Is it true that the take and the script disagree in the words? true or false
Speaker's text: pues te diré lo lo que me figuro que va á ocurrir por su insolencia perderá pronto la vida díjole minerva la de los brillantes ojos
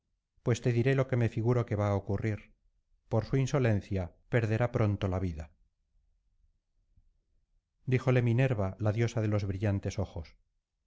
true